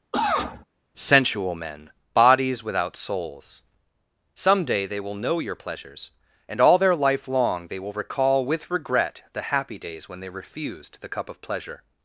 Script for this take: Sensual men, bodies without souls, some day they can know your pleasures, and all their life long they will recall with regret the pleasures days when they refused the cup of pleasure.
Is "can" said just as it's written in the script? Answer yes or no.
no